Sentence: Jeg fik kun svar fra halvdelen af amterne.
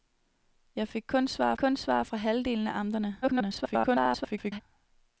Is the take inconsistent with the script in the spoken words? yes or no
yes